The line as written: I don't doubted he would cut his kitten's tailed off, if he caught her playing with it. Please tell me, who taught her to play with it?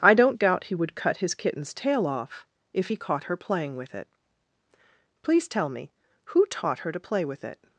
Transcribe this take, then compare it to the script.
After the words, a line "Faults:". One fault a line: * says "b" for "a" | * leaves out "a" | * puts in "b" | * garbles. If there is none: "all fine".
I don't doubt he would cut his kitten's tail off, if he caught her playing with it. Please tell me, who taught her to play with it?
Faults:
* says "doubt" for "doubted"
* says "tail" for "tailed"